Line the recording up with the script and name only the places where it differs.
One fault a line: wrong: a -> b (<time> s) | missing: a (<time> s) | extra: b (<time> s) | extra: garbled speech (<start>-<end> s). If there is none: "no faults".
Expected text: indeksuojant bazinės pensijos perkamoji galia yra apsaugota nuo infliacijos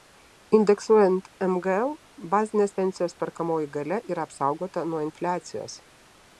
extra: mgl (1.5 s)